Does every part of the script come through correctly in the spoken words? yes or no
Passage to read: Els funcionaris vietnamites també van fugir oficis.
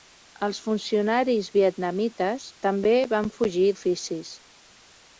yes